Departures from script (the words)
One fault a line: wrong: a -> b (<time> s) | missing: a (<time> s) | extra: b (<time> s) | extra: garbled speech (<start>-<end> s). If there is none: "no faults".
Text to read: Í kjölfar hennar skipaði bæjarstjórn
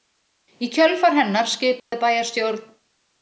no faults